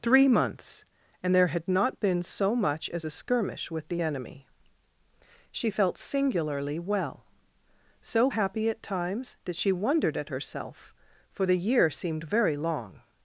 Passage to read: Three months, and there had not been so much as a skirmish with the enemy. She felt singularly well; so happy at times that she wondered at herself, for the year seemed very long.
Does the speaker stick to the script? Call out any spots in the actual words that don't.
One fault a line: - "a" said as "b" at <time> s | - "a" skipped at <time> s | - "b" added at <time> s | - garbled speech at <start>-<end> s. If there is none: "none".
none